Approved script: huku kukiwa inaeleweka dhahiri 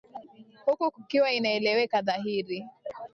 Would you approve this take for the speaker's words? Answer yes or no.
yes